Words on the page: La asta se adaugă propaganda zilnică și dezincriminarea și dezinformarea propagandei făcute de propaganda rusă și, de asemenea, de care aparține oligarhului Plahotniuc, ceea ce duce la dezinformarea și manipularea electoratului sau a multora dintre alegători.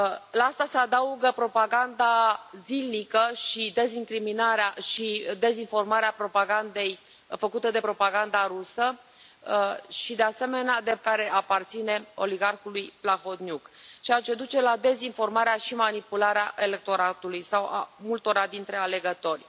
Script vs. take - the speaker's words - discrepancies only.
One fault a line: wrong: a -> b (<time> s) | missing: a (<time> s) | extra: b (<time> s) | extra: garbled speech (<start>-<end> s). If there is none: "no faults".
no faults